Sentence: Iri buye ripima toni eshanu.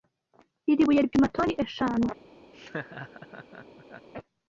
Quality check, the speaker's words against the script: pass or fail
pass